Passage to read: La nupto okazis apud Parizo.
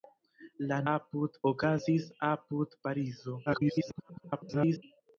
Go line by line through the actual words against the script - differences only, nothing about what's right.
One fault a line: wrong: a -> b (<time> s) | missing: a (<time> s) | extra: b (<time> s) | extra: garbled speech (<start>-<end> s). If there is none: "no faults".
wrong: nupto -> apud (0.9 s)
extra: garbled speech (3.5-4.8 s)